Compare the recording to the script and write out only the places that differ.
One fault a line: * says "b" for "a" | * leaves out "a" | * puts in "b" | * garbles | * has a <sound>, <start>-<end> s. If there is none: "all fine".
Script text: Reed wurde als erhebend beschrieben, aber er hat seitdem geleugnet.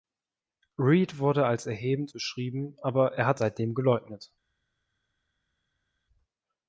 all fine